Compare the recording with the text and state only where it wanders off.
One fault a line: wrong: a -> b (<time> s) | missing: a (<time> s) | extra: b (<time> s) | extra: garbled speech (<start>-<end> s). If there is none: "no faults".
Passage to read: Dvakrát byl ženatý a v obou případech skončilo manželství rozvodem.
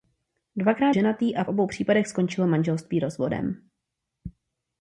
missing: byl (0.9 s)